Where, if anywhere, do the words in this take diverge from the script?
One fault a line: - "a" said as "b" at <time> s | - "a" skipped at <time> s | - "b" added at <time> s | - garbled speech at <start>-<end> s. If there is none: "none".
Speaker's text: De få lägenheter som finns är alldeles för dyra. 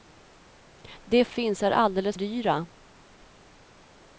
- "få lägenheter som" skipped at 1.2 s
- "för" skipped at 2.2 s